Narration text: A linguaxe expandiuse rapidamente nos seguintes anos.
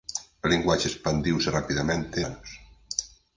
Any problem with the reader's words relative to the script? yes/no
yes